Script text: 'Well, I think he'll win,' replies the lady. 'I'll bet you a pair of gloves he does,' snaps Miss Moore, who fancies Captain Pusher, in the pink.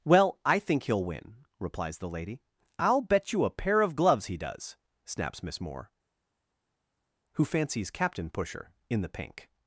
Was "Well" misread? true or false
false